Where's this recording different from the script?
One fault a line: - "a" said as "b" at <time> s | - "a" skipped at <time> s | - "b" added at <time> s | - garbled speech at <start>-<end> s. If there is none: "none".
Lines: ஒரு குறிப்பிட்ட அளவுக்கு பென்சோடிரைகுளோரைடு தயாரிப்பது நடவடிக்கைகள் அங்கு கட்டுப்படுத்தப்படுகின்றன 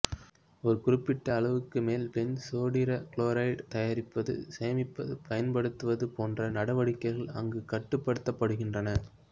- "மேல்" added at 1.9 s
- "சேமிப்பது பயன்படுத்துவது போன்ற" added at 4.6 s